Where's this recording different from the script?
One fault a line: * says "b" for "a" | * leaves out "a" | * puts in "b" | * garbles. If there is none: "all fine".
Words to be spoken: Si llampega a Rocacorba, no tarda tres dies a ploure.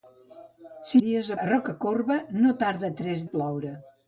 * says "dies" for "llampega"
* leaves out "dies"